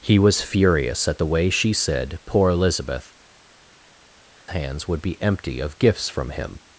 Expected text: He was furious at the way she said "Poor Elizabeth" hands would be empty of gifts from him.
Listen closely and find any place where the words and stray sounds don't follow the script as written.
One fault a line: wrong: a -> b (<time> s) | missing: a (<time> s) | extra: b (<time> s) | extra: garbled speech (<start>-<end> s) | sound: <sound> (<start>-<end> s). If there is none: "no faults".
no faults